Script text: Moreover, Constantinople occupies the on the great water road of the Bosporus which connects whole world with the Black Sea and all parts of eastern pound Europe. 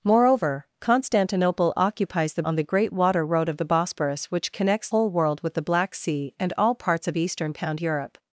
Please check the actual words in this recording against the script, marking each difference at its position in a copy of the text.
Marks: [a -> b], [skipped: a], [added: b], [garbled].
Moreover, Constantinople occupies the on the great water road of the Bosporus which connects whole world with the Black Sea and all parts of eastern pound Europe.